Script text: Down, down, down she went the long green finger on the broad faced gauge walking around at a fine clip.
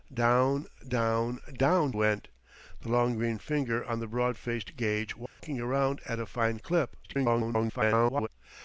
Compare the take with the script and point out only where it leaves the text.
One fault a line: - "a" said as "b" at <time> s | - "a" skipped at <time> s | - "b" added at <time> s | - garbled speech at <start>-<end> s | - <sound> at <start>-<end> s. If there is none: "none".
- "she" skipped at 1.9 s
- dropout at 5.3-5.4 s
- garbled speech at 7.0-8.3 s